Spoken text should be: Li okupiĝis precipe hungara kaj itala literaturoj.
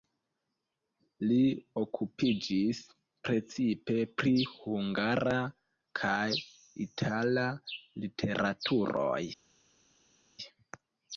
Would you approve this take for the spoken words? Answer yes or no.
no